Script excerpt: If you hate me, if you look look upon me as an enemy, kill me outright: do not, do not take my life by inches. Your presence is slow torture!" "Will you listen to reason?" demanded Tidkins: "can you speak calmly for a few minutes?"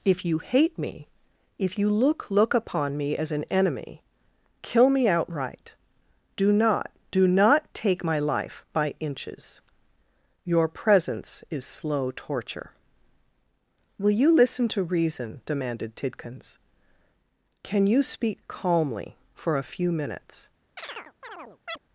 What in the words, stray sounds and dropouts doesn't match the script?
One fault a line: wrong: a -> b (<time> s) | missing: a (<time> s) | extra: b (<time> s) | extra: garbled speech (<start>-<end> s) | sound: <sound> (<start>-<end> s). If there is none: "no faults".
sound: chirp (20.8-21.8 s)